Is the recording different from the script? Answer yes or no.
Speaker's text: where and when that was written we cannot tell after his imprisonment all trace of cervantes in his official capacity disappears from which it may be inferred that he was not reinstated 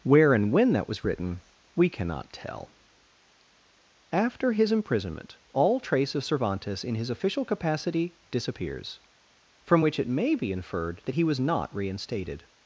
no